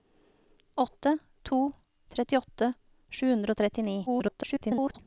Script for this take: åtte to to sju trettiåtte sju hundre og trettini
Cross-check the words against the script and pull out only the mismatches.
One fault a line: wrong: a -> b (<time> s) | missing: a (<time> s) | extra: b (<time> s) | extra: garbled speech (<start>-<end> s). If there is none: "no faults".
missing: to sju (1.7 s)
extra: garbled speech (4.1-5.0 s)